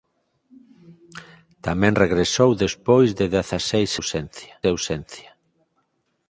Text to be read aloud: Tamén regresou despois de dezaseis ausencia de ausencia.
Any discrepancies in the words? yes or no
no